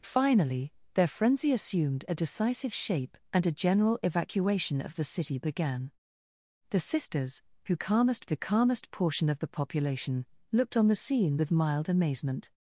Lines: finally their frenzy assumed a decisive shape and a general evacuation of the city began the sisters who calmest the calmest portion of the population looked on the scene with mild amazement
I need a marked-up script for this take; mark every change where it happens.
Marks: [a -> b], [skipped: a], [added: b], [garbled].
finally their frenzy assumed a decisive shape and a general evacuation of the city began the sisters who calmest the calmest portion of the population looked on the scene with mild amazement